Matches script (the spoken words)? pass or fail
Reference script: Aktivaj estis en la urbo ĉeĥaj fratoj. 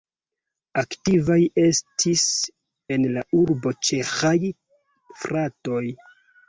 pass